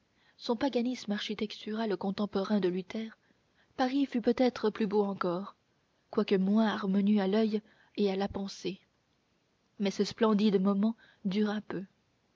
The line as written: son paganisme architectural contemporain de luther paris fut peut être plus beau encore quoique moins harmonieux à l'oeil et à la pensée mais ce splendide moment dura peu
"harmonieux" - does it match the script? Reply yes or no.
yes